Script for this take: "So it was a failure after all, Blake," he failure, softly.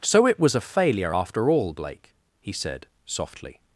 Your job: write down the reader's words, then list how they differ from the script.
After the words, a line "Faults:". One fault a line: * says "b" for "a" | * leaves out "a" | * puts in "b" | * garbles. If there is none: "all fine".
"So it was a failure after all, Blake," he said, softly.
Faults:
* says "said" for "failure"